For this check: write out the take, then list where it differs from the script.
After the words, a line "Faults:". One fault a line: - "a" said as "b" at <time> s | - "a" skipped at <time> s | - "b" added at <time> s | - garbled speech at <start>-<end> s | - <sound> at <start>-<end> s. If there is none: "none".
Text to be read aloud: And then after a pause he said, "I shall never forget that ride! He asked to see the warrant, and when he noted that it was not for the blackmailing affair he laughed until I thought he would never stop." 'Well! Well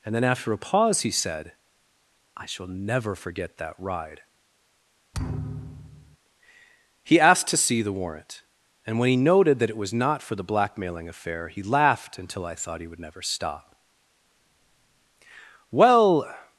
And then after a pause he said, "I shall never forget that ride! He asked to see the warrant, and when he noted that it was not for the blackmailing affair he laughed until I thought he would never stop." 'Well!
Faults:
- thud at 5.1-6.2 s
- "Well" skipped at 16.3 s